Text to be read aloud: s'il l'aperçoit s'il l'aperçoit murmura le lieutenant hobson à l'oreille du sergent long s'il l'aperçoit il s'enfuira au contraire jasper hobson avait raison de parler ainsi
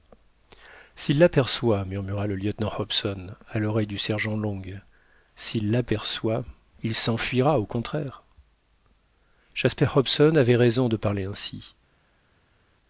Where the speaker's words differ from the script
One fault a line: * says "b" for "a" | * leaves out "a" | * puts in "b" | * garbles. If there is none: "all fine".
* leaves out "s'il l'aperçoit"